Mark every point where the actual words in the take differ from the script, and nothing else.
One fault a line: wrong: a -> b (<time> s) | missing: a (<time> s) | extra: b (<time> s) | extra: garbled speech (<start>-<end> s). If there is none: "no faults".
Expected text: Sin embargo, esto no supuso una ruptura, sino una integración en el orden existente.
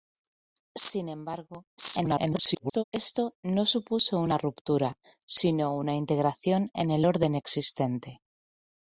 extra: garbled speech (1.8-2.8 s)